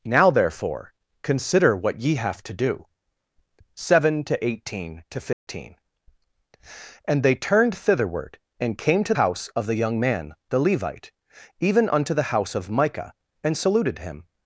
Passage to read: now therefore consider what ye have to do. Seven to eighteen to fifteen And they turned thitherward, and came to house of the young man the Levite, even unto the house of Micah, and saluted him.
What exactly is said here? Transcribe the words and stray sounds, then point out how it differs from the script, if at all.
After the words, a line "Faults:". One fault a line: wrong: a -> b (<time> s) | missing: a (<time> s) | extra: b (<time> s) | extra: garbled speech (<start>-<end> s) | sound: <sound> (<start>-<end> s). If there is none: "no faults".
now therefore consider what ye have to do. Seven to eighteen to fifteen And they turned thitherward, and came to house of the young man the Levite, even unto the house of Micah, and saluted him.
Faults:
sound: dropout (5.3-5.5 s)